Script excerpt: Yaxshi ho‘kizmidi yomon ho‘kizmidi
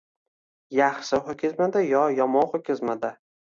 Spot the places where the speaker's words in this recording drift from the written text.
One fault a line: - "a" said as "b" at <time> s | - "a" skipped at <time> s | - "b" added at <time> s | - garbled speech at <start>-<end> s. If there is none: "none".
- "yo" added at 1.9 s